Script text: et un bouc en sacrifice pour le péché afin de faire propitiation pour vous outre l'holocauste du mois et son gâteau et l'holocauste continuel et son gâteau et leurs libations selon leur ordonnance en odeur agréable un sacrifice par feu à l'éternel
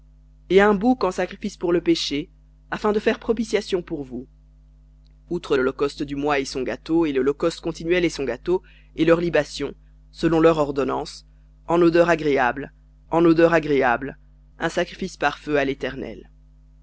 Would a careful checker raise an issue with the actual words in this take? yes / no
yes